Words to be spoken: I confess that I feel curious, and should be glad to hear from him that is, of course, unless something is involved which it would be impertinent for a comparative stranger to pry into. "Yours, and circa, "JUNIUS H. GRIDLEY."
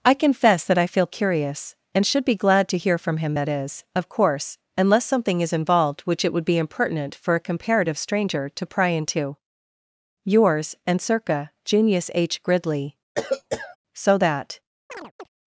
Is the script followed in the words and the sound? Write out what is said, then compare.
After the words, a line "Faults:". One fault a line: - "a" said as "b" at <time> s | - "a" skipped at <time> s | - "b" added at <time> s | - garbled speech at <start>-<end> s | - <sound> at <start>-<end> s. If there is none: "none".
I confess that I feel curious, and should be glad to hear from him that is, of course, unless something is involved which it would be impertinent for a comparative stranger to pry into. "Yours, and circa, "JUNIUS H. GRIDLEY." So that
Faults:
- cough at 13.2-13.8 s
- "So that" added at 13.9 s
- chirp at 14.9-15.3 s